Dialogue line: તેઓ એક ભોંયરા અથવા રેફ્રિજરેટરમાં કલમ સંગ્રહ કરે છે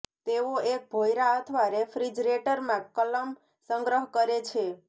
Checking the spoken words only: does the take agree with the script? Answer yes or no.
yes